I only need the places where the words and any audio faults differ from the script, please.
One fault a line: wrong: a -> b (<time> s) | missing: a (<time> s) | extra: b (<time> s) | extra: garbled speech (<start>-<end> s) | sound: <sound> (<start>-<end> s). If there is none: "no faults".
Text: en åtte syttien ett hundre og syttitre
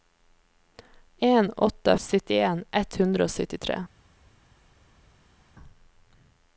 no faults